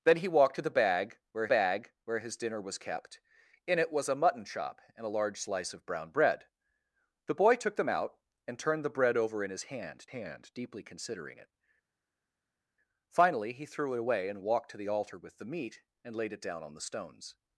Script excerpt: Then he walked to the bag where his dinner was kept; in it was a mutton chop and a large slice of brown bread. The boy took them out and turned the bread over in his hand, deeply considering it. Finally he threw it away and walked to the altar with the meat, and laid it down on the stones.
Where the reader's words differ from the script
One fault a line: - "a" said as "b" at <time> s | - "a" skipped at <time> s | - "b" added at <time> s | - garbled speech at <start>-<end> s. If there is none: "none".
- "bag where" added at 1.5 s
- "hand" added at 10.1 s